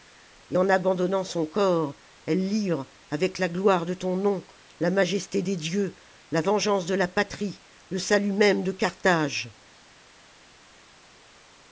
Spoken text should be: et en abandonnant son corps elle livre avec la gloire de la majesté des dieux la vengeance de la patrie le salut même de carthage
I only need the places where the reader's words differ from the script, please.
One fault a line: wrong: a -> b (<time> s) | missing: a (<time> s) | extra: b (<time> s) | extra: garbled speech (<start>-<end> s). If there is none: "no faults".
extra: ton nom (3.9 s)